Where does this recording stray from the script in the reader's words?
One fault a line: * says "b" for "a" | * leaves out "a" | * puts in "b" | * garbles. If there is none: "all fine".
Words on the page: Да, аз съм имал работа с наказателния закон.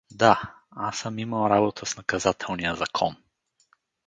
all fine